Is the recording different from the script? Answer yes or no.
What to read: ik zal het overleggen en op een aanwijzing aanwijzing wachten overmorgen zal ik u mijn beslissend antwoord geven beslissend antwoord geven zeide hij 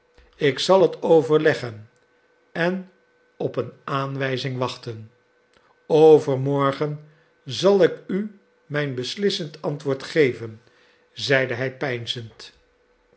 yes